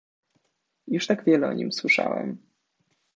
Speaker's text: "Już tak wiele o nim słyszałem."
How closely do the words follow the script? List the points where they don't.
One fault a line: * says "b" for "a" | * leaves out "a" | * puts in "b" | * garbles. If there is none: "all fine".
all fine